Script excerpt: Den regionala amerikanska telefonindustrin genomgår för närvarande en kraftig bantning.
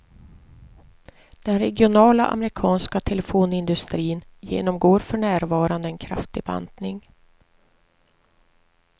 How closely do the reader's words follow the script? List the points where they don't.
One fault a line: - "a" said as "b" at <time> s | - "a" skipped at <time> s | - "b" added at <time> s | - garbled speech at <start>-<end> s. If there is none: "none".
none